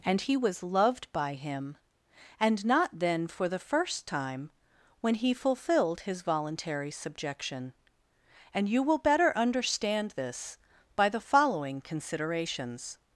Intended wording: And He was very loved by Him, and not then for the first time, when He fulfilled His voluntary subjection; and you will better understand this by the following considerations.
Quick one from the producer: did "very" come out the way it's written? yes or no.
no